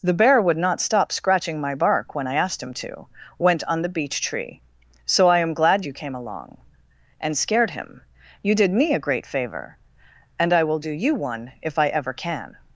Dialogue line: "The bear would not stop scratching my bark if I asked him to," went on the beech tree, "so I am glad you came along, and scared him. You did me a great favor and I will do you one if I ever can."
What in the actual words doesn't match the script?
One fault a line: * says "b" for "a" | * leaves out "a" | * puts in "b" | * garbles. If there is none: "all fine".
* says "when" for "if"